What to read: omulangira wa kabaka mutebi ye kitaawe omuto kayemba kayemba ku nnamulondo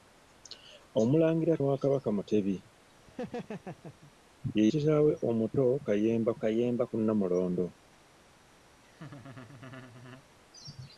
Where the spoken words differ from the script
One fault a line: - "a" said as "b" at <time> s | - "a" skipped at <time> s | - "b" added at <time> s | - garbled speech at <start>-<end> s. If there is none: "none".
none